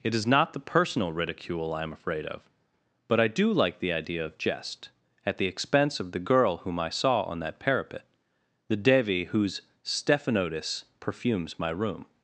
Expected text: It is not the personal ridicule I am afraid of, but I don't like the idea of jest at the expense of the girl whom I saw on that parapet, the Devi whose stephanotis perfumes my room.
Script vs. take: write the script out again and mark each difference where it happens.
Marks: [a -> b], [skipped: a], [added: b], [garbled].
It is not the personal ridicule I am afraid of, but I [don't -> do] like the idea of jest at the expense of the girl whom I saw on that parapet, the Devi whose stephanotis perfumes my room.